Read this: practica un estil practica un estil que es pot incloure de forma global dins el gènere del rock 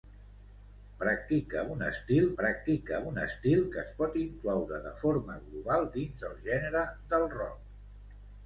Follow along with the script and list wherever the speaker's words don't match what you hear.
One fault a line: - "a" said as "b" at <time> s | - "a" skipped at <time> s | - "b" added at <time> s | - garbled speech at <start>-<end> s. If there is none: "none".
none